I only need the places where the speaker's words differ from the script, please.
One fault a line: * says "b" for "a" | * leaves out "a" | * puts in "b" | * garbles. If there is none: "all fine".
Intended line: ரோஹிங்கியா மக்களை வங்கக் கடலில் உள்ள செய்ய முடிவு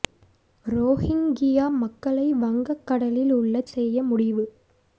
all fine